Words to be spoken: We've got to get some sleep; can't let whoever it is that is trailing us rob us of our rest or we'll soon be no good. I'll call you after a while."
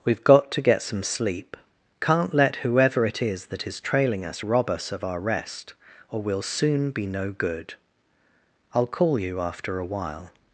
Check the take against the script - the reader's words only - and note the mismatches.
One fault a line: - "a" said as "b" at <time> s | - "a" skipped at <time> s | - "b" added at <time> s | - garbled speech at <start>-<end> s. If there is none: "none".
none